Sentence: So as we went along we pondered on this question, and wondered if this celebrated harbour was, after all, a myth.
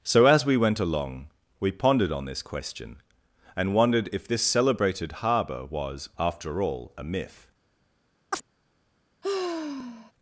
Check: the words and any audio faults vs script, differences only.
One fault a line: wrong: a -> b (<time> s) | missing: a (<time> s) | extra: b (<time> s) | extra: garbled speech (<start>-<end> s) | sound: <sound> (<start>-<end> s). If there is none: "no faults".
sound: chirp (8.3-8.4 s)
sound: sigh (9.2-10.1 s)